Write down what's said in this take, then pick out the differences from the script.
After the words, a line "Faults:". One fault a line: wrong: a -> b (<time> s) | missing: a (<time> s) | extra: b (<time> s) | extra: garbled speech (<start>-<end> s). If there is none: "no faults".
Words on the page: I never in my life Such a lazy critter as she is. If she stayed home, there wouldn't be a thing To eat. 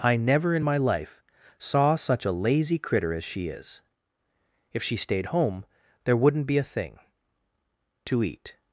I never in my life Saw such a lazy critter as she is. If she stayed home, there wouldn't be a thing To eat.
Faults:
extra: Saw (1.6 s)